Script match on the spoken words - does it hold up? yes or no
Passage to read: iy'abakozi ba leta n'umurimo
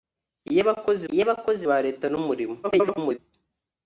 no